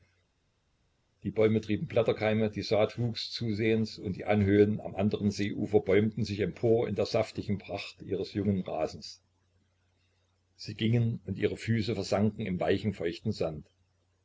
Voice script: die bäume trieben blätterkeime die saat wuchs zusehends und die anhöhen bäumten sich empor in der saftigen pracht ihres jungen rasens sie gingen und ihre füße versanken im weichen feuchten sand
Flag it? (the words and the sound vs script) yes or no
yes